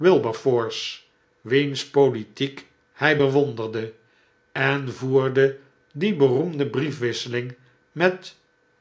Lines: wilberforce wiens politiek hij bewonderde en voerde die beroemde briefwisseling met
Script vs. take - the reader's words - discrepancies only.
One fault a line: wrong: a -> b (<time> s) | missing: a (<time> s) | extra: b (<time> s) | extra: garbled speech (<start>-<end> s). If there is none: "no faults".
no faults